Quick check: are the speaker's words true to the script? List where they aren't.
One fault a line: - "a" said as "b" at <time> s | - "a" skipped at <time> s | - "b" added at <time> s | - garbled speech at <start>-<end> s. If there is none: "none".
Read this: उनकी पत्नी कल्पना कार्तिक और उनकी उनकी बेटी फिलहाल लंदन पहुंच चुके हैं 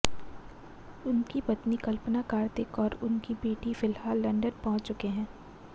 - "उनकी" skipped at 3.3 s